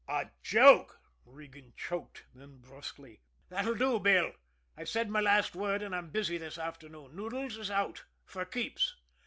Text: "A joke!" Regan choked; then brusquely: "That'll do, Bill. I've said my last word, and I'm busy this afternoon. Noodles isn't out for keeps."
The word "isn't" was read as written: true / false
false